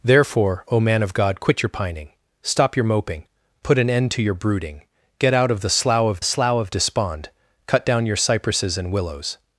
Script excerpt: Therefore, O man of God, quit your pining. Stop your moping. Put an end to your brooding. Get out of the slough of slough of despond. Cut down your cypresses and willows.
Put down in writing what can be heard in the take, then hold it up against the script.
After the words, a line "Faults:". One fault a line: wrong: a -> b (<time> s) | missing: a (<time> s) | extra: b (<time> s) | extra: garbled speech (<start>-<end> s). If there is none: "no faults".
Therefore, O man of God, quit your pining. Stop your moping. Put an end to your brooding. Get out of the slough of slough of despond. Cut down your cypresses and willows.
Faults:
no faults